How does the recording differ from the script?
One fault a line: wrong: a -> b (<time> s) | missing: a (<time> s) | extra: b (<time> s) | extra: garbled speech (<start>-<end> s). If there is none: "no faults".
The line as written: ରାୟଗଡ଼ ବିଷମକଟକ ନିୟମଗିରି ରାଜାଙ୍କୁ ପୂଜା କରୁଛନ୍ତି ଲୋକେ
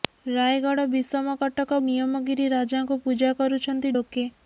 no faults